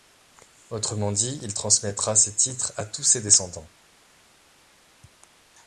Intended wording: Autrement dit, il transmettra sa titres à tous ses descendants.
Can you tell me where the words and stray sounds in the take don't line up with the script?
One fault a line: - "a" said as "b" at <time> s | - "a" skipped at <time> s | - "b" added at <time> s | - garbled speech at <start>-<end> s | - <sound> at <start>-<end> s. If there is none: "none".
- "sa" said as "ses" at 2.2 s